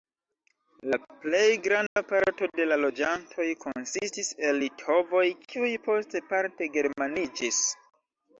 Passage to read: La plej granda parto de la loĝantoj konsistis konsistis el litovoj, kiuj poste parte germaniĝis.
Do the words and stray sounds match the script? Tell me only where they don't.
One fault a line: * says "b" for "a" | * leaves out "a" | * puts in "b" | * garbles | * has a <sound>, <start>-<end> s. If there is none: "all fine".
* has a dropout, 1.9-2.0 s
* leaves out "konsistis"